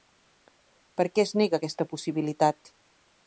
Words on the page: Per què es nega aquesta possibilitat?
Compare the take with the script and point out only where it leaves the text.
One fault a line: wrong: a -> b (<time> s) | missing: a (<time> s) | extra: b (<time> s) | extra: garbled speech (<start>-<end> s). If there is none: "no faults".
no faults